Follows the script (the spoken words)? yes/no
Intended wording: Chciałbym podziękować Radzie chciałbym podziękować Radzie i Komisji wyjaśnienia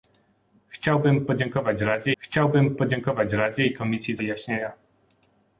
yes